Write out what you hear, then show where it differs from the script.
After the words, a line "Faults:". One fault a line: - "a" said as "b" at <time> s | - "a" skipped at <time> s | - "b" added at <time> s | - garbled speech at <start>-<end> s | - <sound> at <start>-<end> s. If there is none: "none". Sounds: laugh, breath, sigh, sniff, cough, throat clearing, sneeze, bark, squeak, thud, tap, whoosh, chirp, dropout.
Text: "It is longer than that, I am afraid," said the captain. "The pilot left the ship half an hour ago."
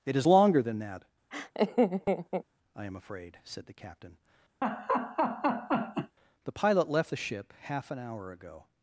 "It is longer than that, I am afraid," said the captain. "The pilot left the ship half an hour ago."
Faults:
- laugh at 1.3-2.4 s
- laugh at 4.6-6.2 s